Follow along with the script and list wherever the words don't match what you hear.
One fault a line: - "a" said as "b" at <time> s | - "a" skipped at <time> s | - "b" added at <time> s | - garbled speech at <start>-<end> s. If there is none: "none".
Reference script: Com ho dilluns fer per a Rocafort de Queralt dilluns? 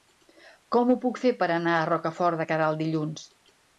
- "dilluns" said as "puc" at 1.0 s
- "anar" added at 1.6 s